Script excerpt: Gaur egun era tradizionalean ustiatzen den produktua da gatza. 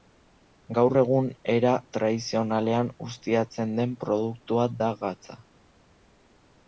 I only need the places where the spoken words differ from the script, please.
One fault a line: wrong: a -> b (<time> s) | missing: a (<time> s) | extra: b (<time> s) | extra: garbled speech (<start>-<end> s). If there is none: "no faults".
no faults